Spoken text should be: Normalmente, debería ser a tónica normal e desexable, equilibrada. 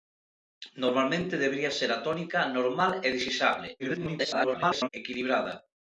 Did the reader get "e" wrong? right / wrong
right